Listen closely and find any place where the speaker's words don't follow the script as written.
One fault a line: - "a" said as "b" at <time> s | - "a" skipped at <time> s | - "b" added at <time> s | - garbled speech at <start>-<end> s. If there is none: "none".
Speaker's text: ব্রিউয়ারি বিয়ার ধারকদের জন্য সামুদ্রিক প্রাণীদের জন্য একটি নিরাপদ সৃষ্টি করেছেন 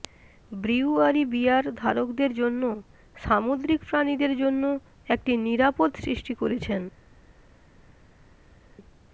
none